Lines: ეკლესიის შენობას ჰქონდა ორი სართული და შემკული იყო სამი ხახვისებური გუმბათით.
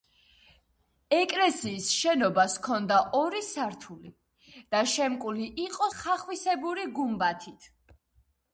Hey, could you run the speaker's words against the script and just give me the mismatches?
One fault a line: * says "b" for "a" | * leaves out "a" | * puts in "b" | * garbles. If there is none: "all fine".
* leaves out "სამი"